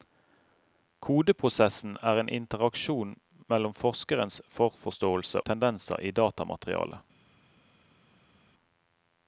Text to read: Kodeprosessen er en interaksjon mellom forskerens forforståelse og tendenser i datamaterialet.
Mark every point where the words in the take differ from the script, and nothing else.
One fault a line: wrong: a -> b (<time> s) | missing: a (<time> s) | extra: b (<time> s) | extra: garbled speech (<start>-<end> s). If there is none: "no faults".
missing: og (5.4 s)